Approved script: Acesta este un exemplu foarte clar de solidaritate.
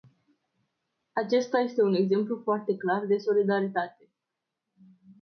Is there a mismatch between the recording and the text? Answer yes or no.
no